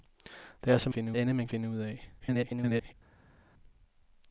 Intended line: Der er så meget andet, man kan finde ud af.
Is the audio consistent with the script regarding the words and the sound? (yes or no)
no